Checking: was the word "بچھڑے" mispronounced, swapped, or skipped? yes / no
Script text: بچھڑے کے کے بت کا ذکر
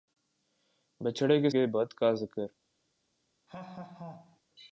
no